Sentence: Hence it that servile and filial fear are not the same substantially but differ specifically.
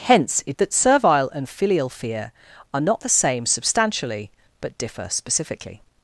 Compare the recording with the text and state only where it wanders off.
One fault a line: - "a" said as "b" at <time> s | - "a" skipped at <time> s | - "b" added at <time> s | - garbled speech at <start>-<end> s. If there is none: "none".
none